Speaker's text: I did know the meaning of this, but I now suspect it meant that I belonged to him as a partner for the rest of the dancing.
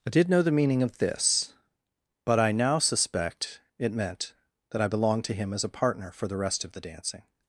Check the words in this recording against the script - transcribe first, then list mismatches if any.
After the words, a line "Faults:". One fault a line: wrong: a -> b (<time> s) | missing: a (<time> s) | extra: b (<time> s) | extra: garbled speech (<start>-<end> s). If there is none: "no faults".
I did know the meaning of this, but I now suspect it meant that I belonged to him as a partner for the rest of the dancing.
Faults:
no faults